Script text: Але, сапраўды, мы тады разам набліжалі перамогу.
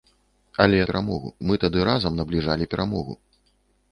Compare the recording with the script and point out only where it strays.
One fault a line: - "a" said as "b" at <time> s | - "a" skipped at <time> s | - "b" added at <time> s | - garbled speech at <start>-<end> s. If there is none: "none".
- "сапраўды" said as "перамогу" at 0.9 s